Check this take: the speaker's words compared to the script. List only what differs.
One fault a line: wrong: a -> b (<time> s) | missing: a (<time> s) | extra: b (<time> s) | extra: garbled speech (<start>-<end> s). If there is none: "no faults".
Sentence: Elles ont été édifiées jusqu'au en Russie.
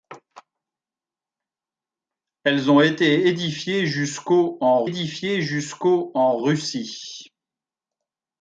extra: édifiées jusqu'au en (4.8 s)